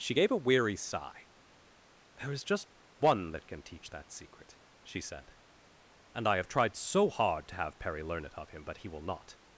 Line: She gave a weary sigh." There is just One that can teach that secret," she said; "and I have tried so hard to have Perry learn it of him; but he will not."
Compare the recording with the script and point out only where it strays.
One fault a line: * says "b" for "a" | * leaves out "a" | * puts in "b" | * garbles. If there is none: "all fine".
all fine